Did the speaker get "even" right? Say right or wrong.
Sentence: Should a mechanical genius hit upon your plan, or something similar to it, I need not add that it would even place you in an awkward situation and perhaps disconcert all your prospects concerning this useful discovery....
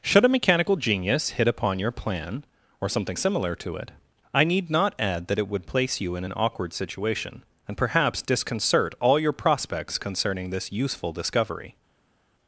wrong